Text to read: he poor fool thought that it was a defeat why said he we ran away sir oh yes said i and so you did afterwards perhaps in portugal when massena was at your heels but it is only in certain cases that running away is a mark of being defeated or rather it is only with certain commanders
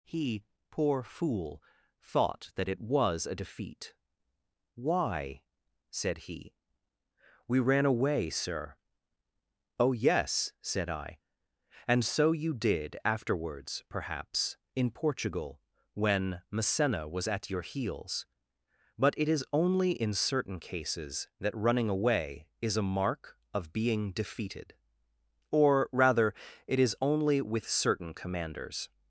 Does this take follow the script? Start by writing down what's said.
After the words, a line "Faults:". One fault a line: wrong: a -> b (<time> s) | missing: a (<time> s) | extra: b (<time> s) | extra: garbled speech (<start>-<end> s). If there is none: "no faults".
he poor fool thought that it was a defeat why said he we ran away sir oh yes said i and so you did afterwards perhaps in portugal when massena was at your heels but it is only in certain cases that running away is a mark of being defeated or rather it is only with certain commanders
Faults:
no faults